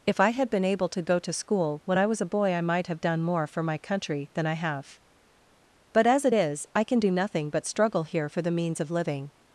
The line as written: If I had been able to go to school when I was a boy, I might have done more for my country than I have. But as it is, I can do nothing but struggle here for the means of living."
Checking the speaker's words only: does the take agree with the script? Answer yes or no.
yes